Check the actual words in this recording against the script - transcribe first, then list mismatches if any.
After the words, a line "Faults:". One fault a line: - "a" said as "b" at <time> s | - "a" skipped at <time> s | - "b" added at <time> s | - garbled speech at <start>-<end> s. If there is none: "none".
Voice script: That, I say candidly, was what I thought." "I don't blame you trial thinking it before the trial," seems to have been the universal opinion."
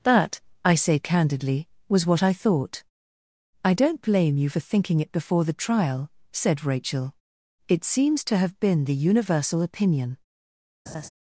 That, I say candidly, was what I thought." "I don't blame you for thinking it before the trial," said Rachel. "It seems to have been the universal opinion."
Faults:
- "trial" said as "for" at 4.5 s
- "said Rachel It" added at 6.3 s